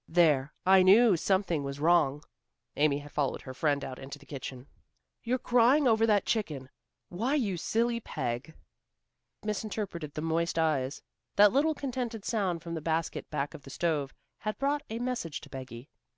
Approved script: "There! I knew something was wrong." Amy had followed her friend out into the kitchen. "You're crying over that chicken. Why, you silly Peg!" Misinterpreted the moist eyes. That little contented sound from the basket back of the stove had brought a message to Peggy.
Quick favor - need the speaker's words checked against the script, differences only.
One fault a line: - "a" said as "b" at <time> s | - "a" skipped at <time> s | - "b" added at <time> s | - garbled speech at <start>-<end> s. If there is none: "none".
none